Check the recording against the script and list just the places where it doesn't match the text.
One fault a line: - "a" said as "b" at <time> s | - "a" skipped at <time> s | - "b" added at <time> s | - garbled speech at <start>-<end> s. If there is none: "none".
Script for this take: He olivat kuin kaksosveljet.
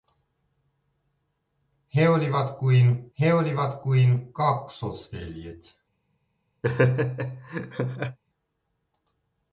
- "he olivat kuin" added at 3.2 s